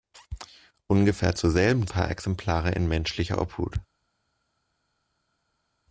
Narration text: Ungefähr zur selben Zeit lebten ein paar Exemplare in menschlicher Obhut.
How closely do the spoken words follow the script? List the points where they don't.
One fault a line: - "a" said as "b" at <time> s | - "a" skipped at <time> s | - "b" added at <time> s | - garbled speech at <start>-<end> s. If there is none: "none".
- "Zeit lebten ein" skipped at 1.9 s